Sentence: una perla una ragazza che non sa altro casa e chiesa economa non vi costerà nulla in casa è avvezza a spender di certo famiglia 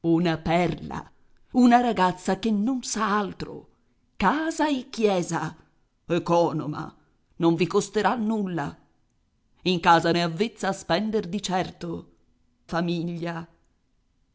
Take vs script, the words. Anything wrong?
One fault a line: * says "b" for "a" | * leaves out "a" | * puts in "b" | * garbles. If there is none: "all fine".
all fine